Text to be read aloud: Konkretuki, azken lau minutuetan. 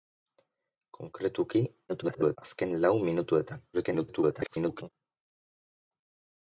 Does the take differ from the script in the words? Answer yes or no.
yes